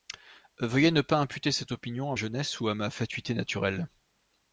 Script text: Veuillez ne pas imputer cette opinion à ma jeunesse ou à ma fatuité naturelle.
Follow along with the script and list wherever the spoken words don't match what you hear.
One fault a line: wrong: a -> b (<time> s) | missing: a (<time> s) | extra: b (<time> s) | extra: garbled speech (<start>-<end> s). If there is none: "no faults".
missing: ma (2.1 s)